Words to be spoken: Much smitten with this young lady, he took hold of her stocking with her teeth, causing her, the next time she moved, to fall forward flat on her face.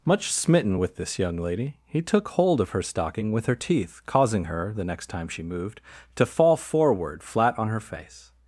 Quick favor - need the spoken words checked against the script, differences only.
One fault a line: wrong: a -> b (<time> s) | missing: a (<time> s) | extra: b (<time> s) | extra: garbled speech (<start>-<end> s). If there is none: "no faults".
no faults